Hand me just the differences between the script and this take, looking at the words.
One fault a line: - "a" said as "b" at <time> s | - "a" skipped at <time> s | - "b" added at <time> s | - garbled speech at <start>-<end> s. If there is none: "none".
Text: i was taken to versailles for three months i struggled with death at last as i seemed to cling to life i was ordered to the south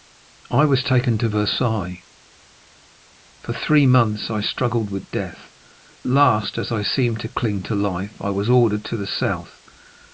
- "at" skipped at 5.5 s